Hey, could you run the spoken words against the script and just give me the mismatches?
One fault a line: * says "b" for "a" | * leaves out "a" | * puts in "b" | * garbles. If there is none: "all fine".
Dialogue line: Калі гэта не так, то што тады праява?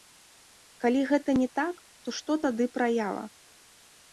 all fine